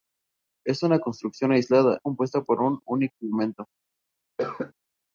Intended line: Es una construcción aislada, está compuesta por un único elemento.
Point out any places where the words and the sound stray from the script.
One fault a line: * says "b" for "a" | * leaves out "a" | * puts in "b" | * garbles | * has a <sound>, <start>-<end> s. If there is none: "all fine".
* leaves out "está"
* has a cough, 4.4-4.7 s